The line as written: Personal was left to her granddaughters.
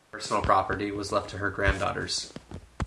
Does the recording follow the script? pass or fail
fail